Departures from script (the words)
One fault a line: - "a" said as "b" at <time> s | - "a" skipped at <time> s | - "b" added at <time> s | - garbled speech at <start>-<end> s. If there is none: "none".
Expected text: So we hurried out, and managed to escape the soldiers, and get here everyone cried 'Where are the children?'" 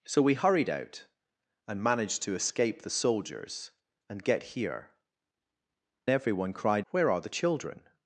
none